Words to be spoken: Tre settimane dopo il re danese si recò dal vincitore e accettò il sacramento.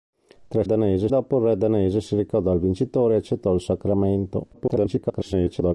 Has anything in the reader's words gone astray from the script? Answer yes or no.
yes